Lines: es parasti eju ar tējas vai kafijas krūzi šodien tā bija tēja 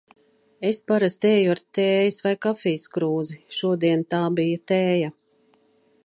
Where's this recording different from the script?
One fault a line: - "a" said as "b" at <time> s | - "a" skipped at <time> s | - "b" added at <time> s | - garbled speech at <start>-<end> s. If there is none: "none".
none